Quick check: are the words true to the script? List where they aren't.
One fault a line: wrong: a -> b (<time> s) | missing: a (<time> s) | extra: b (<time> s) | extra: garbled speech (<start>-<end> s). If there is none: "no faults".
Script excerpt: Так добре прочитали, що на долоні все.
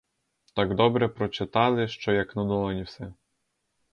extra: як (2.1 s)